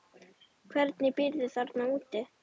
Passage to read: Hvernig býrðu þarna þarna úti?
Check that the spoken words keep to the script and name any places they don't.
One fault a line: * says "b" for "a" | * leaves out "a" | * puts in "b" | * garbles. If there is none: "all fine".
* leaves out "þarna"